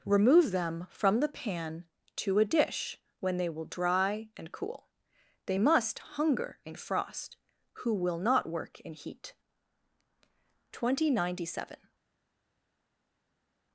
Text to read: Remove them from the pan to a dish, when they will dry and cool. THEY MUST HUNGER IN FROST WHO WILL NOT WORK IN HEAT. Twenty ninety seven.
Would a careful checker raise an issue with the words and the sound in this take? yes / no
no